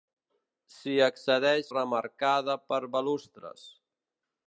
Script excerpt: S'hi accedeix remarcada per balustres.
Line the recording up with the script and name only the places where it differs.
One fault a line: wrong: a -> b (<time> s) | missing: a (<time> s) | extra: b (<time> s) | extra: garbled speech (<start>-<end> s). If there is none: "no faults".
no faults